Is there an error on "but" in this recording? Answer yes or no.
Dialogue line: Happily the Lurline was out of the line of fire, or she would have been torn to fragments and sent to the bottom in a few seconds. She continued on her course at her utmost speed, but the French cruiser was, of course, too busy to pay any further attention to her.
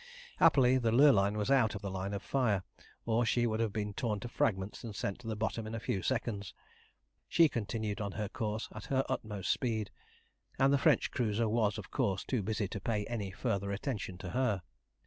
yes